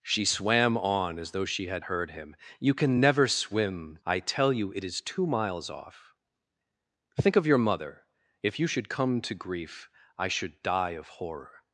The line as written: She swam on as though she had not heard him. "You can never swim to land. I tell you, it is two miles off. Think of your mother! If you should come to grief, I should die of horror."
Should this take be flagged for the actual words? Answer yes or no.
yes